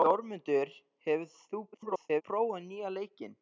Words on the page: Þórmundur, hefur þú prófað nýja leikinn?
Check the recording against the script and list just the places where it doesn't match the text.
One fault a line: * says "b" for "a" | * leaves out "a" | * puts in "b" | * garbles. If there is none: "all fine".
* garbles